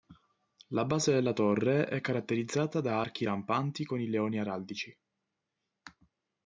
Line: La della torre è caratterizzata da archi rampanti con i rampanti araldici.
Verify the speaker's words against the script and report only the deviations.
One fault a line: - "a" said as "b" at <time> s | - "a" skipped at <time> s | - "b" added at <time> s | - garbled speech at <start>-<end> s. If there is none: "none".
- "base" added at 0.8 s
- "rampanti" said as "leoni" at 4.1 s